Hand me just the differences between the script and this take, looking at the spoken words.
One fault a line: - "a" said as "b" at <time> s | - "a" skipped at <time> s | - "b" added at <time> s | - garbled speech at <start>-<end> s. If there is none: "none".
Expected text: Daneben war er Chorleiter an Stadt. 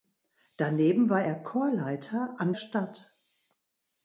none